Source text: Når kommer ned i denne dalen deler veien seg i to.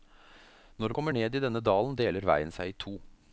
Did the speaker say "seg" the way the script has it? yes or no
yes